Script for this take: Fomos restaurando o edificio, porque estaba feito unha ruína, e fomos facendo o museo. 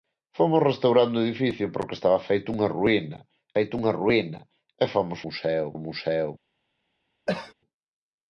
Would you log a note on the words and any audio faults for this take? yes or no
yes